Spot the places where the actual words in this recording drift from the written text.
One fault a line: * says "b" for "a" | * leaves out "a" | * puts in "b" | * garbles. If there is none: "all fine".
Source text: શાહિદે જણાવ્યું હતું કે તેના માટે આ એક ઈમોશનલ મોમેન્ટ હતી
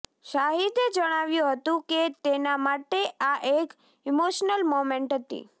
all fine